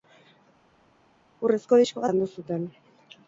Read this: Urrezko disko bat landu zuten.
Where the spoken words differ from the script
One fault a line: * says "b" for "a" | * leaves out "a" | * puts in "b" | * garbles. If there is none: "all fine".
* leaves out "bat"